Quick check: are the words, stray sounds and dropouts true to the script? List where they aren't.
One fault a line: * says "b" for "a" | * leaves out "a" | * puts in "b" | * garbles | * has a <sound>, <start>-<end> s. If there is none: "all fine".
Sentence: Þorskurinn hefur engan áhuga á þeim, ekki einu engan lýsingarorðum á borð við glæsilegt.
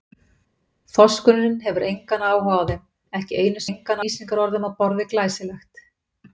all fine